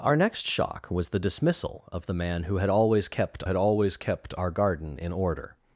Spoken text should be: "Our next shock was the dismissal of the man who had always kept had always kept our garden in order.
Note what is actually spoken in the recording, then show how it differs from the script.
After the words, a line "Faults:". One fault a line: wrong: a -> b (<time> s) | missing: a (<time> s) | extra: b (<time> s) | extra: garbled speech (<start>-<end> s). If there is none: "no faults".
"Our next shock was the dismissal of the man who had always kept had always kept our garden in order.
Faults:
no faults